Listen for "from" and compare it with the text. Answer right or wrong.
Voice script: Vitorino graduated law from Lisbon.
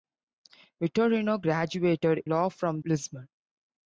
right